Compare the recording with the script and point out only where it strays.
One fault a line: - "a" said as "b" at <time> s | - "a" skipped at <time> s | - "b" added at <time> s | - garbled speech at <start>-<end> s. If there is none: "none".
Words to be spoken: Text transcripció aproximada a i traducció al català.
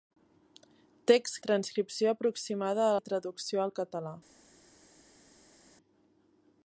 none